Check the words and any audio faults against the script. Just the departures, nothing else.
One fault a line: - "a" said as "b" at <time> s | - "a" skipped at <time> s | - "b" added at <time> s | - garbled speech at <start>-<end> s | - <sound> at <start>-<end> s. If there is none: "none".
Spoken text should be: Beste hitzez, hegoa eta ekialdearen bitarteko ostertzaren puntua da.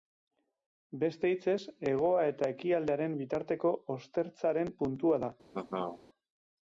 - laugh at 5.5-6.0 s